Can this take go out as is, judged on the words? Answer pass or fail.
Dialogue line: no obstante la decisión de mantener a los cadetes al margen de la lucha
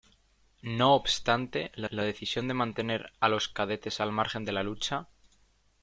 fail